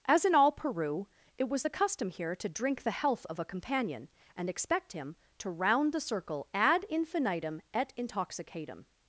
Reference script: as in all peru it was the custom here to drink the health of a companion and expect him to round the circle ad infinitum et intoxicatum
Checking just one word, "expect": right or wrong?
right